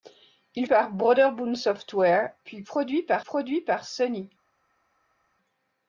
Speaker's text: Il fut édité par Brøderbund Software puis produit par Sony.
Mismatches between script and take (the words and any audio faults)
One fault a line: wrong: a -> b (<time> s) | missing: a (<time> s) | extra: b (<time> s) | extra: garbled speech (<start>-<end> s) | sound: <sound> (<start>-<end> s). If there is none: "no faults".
missing: fut édité (0.7 s)
extra: produit par (3.2 s)